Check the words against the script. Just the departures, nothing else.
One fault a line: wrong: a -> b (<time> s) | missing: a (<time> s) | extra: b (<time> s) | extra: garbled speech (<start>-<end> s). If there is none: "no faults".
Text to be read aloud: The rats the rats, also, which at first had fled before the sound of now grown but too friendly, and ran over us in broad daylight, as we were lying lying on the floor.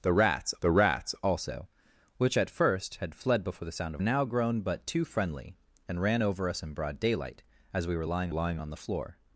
no faults